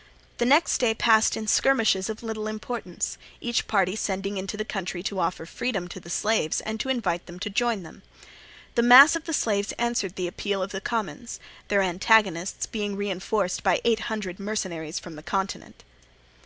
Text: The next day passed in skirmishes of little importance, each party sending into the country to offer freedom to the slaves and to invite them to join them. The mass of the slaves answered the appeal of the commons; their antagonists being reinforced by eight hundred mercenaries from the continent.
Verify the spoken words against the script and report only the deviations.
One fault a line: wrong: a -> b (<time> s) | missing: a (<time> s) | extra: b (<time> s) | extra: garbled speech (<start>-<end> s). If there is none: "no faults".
no faults